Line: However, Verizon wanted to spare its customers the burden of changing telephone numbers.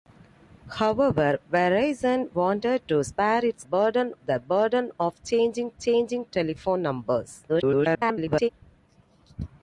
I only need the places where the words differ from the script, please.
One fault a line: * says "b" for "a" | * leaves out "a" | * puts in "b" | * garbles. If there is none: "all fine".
* says "burden" for "customers"
* puts in "changing"
* garbles